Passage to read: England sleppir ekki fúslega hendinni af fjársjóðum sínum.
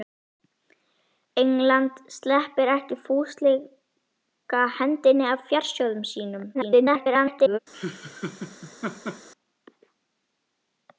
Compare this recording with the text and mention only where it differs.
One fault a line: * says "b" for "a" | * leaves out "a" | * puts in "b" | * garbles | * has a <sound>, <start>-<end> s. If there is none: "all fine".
* garbles
* has a laugh, 7.7-9.3 s